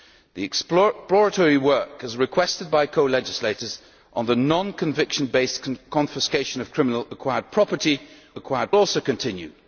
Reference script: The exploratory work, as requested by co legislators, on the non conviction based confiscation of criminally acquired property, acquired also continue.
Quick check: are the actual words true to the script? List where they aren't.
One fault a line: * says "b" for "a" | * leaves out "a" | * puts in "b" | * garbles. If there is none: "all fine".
all fine